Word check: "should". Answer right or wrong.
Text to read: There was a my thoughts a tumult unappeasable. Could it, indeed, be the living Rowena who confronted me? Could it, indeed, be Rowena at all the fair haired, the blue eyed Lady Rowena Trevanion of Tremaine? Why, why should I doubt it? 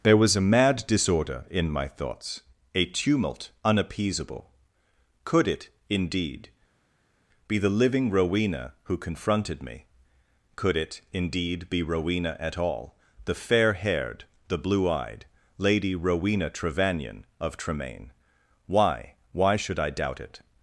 right